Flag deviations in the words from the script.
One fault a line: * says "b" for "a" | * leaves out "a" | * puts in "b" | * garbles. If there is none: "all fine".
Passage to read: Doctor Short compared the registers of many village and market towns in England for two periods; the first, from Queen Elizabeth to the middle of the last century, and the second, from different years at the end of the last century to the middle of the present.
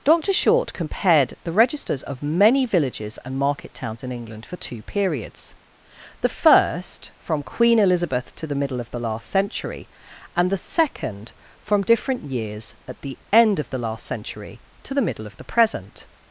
* says "villages" for "village"